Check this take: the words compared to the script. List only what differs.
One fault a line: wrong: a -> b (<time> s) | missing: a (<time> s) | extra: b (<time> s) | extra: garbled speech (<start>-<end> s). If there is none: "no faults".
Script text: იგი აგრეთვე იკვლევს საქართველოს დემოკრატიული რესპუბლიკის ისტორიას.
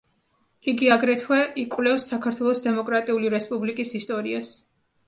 no faults